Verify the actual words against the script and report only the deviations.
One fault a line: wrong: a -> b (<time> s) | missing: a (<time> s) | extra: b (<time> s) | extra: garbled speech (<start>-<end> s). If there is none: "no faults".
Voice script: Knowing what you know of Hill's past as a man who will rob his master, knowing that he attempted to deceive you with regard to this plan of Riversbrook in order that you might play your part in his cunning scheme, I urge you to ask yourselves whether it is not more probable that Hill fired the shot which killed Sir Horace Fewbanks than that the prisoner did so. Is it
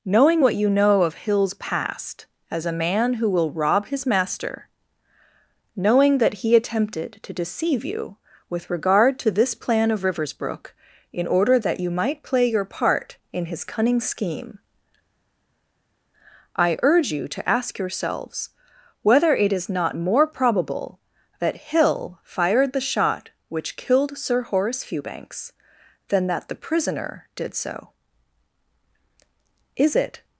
no faults